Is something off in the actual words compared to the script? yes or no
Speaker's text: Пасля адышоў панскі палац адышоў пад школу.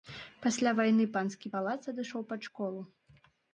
yes